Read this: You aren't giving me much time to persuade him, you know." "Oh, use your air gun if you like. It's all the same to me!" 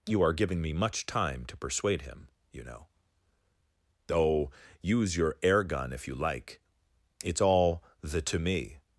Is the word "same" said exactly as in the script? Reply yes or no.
no